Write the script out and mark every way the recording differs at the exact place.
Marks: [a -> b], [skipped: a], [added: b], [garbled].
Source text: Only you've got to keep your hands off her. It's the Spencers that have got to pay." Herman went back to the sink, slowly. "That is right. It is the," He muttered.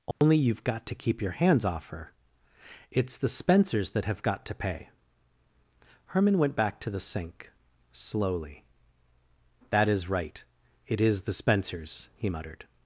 Only you've got to keep your hands off her. It's the Spencers that have got to pay." Herman went back to the sink, slowly. "That is right. It is the," [added: Spencers] He muttered.